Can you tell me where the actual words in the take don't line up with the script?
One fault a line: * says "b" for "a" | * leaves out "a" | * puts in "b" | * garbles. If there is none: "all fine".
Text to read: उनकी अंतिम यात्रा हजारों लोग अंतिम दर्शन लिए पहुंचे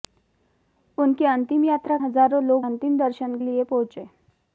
all fine